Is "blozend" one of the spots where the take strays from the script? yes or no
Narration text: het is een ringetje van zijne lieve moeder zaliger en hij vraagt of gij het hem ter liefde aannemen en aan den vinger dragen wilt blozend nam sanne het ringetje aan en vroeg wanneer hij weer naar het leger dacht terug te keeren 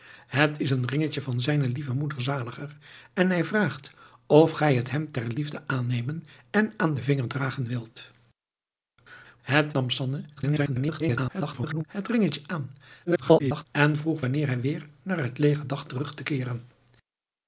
yes